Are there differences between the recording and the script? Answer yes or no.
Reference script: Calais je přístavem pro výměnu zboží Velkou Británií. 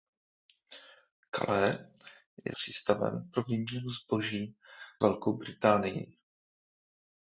no